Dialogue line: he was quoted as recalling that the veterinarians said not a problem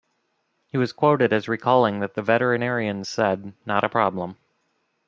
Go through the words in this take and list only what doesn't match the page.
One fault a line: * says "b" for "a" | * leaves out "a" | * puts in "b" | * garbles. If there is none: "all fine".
all fine